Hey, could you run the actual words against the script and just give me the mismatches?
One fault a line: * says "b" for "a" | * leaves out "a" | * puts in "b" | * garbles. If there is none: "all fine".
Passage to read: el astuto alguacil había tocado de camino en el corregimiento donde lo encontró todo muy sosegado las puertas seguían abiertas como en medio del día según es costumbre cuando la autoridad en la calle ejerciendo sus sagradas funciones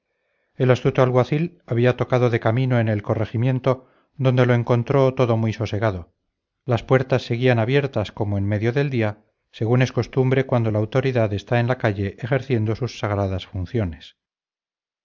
* puts in "está"